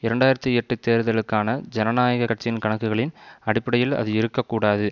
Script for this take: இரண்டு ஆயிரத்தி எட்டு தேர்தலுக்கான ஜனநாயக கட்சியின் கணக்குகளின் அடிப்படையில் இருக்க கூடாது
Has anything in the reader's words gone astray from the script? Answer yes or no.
yes